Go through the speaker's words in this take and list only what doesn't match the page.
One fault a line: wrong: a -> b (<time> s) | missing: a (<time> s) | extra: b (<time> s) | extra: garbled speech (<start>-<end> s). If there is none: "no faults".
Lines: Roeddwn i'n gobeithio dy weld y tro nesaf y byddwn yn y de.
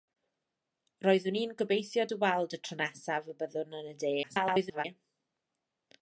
extra: garbled speech (4.2-4.8 s)